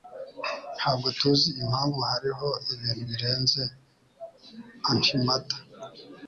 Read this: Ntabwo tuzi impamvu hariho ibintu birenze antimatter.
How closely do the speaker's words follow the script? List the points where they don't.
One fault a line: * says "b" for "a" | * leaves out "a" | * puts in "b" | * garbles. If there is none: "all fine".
all fine